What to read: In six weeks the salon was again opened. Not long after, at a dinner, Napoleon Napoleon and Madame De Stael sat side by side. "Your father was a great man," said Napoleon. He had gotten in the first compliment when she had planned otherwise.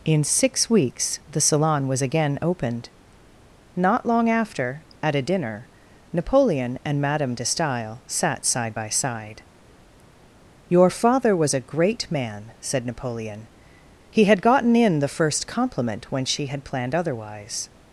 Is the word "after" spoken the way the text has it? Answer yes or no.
yes